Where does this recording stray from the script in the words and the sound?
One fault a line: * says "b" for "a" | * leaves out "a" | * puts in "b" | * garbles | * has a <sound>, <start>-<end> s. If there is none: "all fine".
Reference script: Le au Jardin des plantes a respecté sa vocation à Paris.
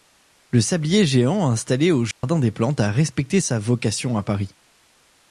* puts in "sablier géant installé"
* has a dropout, 2.1-2.2 s